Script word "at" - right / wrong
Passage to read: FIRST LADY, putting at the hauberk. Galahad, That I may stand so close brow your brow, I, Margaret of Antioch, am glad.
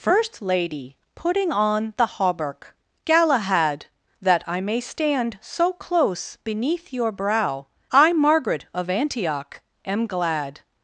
wrong